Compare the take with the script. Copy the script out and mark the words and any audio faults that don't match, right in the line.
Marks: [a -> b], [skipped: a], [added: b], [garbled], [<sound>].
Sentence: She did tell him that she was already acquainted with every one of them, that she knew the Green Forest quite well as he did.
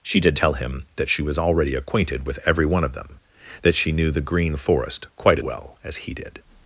She did tell him that she was already acquainted with every one of them, that she knew the Green Forest quite well as he did.